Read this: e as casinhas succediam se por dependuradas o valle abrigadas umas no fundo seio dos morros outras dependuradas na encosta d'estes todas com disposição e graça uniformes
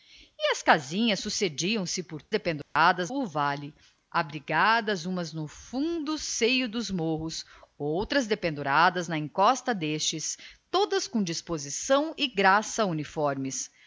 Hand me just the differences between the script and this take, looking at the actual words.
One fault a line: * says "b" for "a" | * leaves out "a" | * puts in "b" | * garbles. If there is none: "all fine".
all fine